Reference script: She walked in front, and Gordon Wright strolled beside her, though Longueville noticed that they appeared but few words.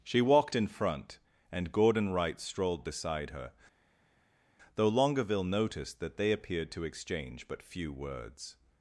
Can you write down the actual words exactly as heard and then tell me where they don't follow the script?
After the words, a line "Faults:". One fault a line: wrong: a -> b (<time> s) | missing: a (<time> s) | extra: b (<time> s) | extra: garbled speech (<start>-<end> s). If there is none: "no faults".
She walked in front, and Gordon Wright strolled beside her, though Longueville noticed that they appeared to exchange but few words.
Faults:
extra: to exchange (6.7 s)